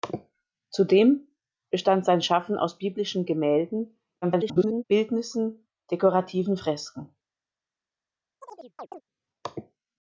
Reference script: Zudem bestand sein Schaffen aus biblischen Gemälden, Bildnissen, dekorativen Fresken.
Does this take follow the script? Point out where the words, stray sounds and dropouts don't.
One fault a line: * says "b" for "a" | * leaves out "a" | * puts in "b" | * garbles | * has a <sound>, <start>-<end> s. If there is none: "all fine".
* garbles
* has a chirp, 8.4-9.0 s